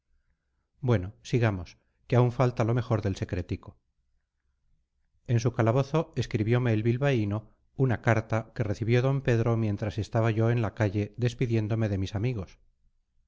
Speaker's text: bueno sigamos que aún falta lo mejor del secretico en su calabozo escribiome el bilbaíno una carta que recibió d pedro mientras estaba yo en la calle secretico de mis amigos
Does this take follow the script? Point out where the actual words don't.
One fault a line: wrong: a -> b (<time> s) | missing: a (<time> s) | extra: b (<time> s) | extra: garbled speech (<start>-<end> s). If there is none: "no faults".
wrong: secretico -> despidiéndome (11.2 s)